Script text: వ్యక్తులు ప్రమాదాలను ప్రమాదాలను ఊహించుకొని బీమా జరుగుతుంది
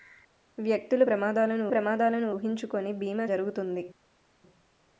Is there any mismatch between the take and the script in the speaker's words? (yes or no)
no